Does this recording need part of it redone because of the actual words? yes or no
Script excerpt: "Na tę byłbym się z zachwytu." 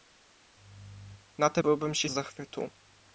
no